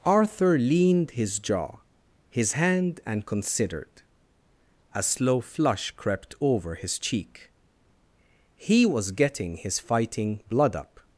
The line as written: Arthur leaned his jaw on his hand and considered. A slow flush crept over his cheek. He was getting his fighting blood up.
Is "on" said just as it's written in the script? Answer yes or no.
no